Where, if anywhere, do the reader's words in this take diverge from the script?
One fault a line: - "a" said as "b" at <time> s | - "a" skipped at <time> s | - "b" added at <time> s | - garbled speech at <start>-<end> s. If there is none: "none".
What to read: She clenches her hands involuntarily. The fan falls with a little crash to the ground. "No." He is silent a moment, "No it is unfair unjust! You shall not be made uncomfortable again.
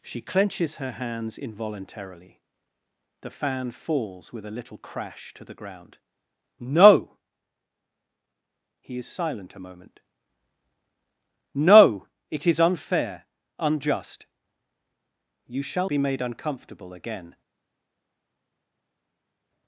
- "not" skipped at 15.9 s